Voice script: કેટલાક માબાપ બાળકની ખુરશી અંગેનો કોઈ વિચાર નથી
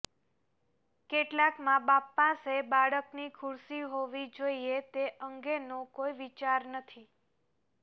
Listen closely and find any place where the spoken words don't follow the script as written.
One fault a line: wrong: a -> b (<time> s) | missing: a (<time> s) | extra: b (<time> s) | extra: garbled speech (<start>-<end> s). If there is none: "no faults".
extra: પાસે (2.1 s)
extra: હોવી જોઈએ તે (3.9 s)